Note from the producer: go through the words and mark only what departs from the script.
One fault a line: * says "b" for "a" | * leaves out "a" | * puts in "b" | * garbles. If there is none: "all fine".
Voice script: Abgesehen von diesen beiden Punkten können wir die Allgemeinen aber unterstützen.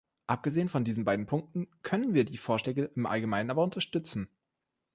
* puts in "Vorschläge im"